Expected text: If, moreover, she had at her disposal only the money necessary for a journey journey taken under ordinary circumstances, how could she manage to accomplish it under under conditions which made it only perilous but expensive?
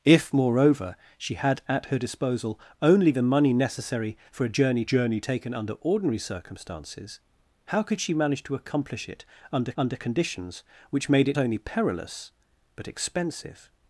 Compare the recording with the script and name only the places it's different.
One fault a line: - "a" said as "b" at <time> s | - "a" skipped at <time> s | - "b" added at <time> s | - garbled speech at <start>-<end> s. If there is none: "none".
none